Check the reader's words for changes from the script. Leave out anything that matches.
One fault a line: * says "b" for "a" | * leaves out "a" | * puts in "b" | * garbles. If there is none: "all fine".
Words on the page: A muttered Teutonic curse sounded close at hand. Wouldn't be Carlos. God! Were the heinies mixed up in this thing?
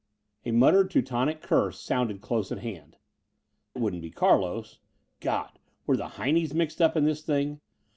all fine